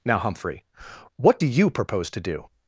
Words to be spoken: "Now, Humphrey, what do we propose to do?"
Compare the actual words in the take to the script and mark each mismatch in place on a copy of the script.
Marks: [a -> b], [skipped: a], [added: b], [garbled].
"Now, Humphrey, what do [we -> you] propose to do?"